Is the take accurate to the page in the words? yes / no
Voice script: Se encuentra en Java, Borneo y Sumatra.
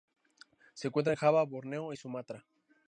yes